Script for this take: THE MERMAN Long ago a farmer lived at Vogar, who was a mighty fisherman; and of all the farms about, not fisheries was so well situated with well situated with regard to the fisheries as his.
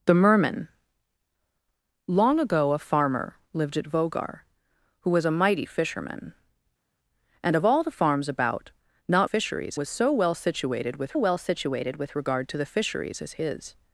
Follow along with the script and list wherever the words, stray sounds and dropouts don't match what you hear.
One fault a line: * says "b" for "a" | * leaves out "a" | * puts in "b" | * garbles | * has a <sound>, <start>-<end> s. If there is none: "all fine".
all fine